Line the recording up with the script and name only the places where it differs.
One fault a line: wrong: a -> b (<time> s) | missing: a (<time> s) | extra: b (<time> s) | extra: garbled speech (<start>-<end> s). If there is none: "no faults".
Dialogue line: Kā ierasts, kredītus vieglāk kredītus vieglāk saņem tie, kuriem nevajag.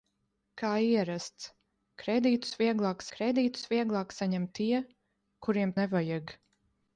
no faults